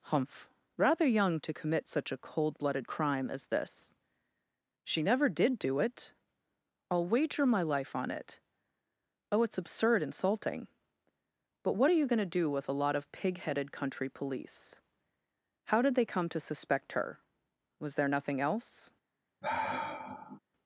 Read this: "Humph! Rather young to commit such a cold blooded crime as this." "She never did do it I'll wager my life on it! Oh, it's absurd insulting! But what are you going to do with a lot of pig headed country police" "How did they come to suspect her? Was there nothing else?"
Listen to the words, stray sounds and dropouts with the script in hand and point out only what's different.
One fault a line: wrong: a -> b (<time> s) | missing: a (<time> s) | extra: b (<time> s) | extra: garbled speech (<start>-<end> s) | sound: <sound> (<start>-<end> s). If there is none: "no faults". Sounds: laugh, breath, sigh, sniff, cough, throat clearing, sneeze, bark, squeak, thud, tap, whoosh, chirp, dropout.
sound: sigh (19.4-20.4 s)